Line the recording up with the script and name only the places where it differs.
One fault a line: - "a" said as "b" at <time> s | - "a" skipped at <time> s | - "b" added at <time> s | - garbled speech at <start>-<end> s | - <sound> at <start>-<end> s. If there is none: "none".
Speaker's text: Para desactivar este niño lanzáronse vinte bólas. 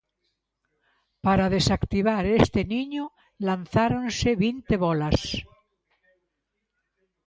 none